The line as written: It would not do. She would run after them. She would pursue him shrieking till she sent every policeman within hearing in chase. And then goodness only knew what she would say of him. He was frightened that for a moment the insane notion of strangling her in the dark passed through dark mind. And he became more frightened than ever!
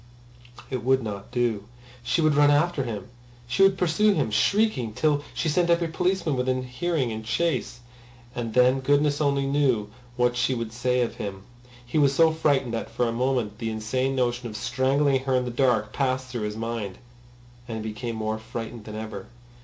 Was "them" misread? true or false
true